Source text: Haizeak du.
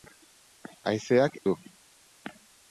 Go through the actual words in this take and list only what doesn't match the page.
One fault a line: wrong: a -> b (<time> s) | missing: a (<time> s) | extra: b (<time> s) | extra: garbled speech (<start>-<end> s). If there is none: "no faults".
no faults